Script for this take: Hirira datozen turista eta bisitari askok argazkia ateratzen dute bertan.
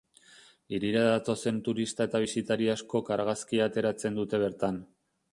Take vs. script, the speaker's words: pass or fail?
pass